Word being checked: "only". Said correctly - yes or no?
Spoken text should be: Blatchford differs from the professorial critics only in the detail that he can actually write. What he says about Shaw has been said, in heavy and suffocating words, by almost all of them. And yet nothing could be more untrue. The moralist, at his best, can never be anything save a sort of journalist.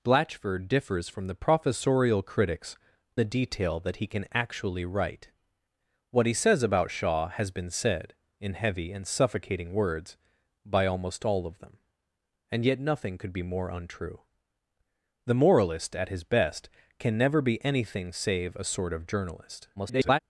no